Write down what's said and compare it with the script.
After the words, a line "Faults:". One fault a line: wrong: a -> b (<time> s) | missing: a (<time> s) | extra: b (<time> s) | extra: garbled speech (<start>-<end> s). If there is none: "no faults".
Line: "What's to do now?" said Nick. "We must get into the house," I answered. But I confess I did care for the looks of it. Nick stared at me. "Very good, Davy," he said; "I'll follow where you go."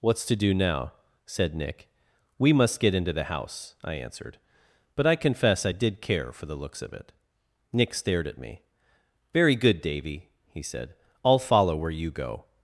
"What's to do now?" said Nick. "We must get into the house," I answered. But I confess I did care for the looks of it. Nick stared at me. "Very good, Davy," he said; "I'll follow where you go."
Faults:
no faults